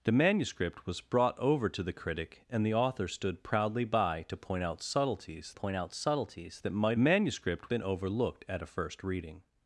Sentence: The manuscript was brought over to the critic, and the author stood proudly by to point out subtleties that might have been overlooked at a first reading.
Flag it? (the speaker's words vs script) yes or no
yes